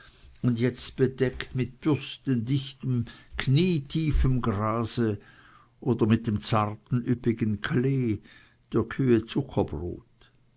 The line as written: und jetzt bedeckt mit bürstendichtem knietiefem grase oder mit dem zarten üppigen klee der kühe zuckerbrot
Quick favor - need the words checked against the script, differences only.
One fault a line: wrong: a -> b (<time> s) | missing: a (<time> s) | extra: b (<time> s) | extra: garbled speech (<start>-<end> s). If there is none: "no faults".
no faults